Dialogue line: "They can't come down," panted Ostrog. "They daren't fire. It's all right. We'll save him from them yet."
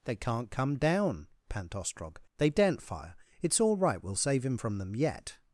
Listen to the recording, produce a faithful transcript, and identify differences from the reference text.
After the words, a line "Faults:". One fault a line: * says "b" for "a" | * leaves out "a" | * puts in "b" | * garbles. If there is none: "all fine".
"They can't come down," pant Ostrog. "They daren't fire. It's all right. We'll save him from them yet."
Faults:
* says "pant" for "panted"